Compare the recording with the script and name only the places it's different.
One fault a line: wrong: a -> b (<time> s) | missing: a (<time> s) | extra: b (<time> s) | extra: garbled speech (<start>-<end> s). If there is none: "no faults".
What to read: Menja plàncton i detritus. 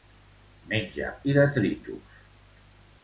missing: plàncton (1.1 s)